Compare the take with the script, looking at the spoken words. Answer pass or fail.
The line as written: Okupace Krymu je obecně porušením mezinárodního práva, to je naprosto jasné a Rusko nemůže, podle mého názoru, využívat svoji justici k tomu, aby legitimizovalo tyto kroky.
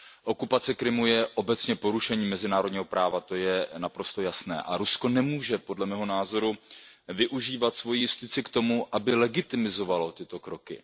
pass